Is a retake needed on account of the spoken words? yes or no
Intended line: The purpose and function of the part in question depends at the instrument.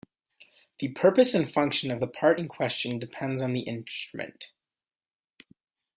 yes